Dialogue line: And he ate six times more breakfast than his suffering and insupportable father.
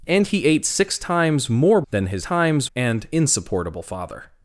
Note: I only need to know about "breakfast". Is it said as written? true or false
false